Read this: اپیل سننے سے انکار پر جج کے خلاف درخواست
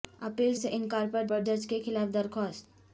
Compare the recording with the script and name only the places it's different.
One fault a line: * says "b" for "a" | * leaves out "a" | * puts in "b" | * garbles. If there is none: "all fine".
* leaves out "سننے"
* puts in "پر"